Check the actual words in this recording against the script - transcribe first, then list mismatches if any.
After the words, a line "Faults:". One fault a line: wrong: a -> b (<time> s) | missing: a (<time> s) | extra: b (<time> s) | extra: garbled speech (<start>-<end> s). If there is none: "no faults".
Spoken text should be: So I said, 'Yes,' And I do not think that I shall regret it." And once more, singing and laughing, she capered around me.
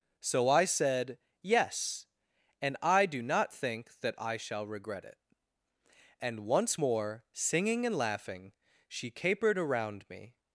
So I said, 'Yes,' And I do not think that I shall regret it." And once more, singing and laughing, she capered around me.
Faults:
no faults